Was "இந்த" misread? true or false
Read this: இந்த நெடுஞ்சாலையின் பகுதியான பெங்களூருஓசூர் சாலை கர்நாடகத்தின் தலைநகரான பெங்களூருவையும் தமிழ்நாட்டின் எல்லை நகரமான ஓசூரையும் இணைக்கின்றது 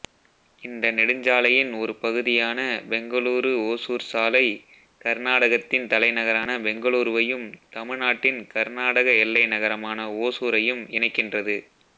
false